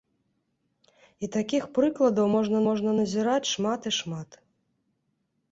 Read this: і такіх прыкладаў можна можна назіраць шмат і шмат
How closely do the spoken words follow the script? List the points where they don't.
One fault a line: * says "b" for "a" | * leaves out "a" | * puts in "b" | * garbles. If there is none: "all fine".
all fine